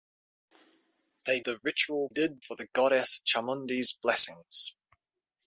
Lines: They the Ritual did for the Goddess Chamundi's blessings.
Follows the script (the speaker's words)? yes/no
yes